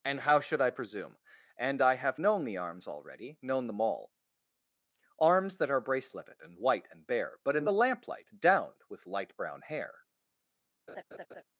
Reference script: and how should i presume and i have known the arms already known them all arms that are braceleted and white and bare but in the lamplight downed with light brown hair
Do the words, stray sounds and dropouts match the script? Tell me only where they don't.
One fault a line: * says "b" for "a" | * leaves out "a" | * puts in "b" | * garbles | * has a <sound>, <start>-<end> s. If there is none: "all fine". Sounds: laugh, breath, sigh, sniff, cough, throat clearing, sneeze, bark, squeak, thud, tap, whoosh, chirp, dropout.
* has a laugh, 10.9-11.4 s